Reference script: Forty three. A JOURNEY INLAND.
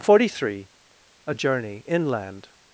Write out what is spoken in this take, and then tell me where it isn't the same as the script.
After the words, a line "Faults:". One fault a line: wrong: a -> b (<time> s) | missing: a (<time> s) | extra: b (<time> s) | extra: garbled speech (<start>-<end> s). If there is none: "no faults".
Forty three. A JOURNEY INLAND.
Faults:
no faults